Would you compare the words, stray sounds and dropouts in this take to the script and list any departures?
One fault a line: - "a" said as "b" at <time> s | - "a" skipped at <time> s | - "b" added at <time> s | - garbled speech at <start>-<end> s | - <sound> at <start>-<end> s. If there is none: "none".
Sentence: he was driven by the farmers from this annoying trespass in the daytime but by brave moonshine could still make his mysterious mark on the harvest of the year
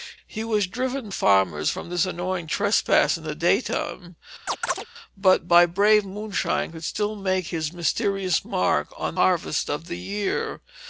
- "by the" skipped at 1.1 s
- chirp at 4.5-4.9 s
- "the" skipped at 9.2 s